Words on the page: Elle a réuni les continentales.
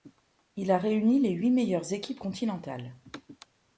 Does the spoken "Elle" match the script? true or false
false